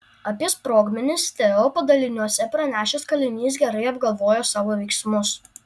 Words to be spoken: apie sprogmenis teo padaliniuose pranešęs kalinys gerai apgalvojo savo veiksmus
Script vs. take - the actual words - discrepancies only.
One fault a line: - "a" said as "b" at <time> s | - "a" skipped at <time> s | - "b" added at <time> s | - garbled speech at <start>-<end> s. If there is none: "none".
none